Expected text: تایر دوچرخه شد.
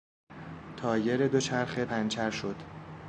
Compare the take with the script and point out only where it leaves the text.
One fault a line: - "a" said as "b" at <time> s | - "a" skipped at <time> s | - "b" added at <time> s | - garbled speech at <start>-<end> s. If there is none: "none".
- "پنچر" added at 1.8 s